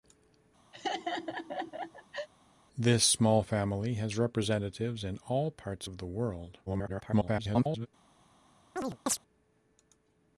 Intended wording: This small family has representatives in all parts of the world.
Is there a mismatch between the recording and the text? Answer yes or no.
yes